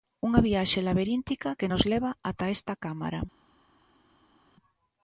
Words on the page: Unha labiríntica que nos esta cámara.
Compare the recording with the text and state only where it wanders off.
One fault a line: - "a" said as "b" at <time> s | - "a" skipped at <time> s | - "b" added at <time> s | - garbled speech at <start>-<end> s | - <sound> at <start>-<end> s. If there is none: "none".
- "viaxe" added at 0.5 s
- "leva ata" added at 1.9 s